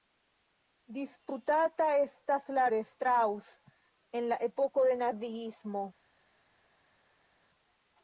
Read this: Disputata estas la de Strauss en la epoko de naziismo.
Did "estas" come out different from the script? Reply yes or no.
no